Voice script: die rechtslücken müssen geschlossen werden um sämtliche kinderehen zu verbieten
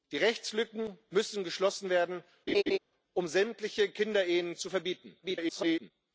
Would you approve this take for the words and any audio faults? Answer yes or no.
no